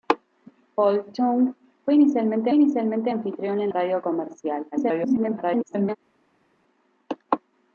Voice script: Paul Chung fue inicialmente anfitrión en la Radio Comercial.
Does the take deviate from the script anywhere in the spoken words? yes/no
yes